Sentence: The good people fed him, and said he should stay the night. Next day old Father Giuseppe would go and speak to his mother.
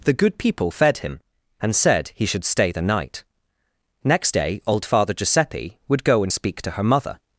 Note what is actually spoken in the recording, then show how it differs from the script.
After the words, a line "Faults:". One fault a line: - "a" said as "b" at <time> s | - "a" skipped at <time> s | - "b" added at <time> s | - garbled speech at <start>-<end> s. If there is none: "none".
The good people fed him, and said he should stay the night. Next day old Father Giuseppe would go and speak to her mother.
Faults:
- "his" said as "her" at 6.7 s